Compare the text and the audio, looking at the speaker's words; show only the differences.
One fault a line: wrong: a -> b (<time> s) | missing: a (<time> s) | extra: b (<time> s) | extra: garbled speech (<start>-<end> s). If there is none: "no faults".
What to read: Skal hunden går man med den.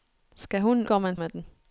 no faults